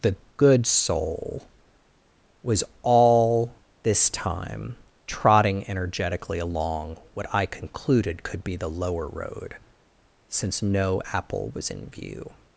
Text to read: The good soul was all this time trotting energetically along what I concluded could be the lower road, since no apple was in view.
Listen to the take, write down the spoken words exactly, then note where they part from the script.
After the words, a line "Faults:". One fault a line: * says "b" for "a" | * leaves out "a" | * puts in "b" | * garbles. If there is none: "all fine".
The good soul was all this time trotting energetically along what I concluded could be the lower road, since no apple was in view.
Faults:
all fine